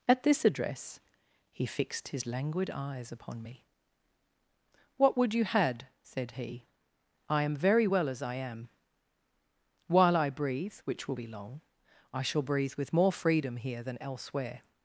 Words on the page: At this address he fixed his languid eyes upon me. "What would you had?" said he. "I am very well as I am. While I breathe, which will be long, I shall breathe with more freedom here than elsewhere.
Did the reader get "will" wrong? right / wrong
right